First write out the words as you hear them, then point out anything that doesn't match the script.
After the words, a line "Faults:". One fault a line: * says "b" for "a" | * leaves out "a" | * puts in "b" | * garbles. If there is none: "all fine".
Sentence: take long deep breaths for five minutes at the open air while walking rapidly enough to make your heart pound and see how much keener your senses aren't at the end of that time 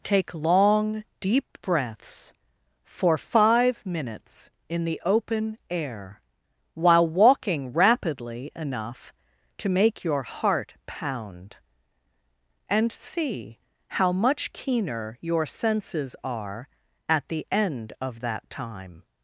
take long deep breaths for five minutes in the open air while walking rapidly enough to make your heart pound and see how much keener your senses are at the end of that time
Faults:
* says "in" for "at"
* says "are" for "aren't"